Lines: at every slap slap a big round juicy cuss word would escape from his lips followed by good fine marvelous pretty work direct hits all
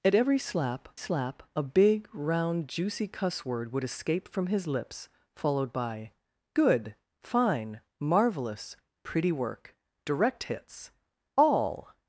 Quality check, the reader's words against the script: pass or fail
pass